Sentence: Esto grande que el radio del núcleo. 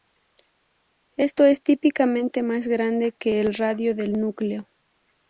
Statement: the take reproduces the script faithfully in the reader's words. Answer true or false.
false